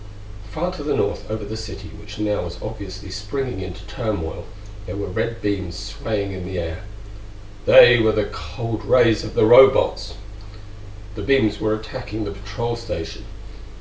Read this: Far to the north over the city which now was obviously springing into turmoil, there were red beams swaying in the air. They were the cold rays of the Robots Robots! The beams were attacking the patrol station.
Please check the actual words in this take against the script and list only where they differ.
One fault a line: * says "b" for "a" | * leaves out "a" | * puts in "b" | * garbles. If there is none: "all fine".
* leaves out "Robots"